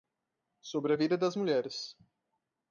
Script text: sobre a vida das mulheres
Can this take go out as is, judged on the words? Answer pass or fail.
pass